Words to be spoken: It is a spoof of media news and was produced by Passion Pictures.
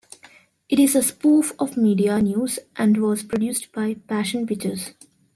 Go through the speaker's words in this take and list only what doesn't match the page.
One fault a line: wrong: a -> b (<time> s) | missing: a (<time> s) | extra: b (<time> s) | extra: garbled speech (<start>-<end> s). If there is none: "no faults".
no faults